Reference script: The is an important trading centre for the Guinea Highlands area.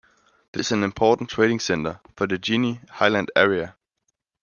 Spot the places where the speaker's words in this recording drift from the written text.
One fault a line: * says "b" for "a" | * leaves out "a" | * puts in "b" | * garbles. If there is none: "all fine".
all fine